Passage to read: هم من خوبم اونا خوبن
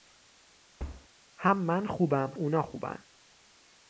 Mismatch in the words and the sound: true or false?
true